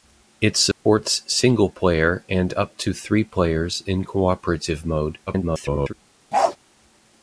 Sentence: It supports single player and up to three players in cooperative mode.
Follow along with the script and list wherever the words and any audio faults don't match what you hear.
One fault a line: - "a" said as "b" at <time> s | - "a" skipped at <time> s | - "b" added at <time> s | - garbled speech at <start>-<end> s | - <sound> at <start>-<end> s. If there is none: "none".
- dropout at 0.7-0.9 s
- garbled speech at 5.3-5.9 s
- bark at 6.3-6.6 s